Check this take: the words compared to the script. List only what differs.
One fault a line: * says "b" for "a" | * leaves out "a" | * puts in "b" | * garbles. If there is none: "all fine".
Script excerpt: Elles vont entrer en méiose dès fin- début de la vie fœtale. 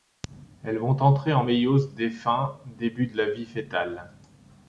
all fine